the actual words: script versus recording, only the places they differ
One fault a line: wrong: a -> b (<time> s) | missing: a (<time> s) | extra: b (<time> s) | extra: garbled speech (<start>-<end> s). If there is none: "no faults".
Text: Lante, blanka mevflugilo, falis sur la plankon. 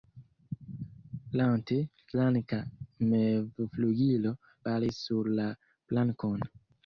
no faults